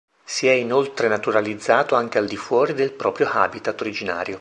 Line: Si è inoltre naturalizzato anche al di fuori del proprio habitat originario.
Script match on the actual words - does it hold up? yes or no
yes